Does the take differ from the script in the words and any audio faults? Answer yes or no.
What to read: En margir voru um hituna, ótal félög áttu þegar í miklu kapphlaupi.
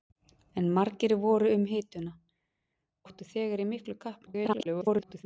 yes